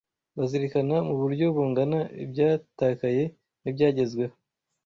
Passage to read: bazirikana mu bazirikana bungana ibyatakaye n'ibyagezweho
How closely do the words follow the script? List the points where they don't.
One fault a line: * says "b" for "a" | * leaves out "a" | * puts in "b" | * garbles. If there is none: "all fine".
* says "buryo" for "bazirikana"